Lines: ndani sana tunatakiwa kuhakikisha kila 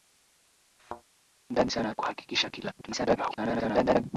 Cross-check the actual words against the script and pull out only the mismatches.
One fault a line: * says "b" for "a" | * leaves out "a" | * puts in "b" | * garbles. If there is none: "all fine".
* leaves out "tunatakiwa"
* garbles